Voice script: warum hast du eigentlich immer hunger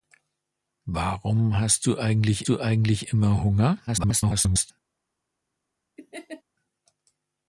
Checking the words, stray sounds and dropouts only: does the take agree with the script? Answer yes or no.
no